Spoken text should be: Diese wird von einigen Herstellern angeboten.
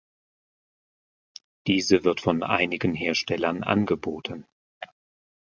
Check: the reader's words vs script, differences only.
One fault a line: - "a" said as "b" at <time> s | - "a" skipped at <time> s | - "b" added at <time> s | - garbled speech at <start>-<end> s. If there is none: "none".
none